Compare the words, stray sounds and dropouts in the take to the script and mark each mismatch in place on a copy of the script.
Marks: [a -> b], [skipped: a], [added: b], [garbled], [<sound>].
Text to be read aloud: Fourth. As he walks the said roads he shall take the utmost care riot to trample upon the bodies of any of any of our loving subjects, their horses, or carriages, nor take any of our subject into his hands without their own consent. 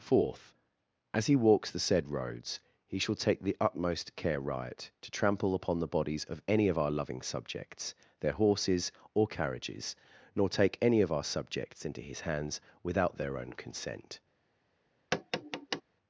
Fourth. As he walks the said roads he shall take the utmost care riot to trample upon the bodies of any of [skipped: any of] our loving subjects, their horses, or carriages, nor take any of our [subject -> subjects] into his hands without their own consent. [tap]